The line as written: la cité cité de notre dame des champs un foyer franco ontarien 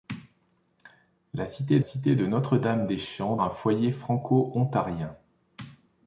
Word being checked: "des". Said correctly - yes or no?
yes